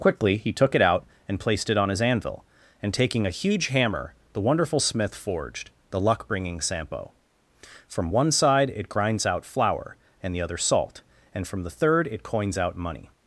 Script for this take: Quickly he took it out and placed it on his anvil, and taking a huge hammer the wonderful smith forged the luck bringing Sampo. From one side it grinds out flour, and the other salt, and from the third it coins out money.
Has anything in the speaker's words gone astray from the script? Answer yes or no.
no